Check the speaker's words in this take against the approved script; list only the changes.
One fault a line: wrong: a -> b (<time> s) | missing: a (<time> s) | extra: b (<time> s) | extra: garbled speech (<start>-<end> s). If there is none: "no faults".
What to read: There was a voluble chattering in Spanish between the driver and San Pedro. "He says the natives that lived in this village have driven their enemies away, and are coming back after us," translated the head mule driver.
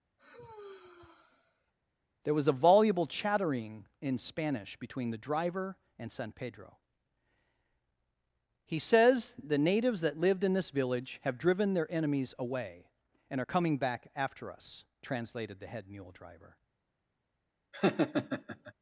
no faults